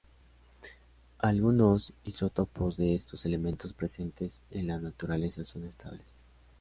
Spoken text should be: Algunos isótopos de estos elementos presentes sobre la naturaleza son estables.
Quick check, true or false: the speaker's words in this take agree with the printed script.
false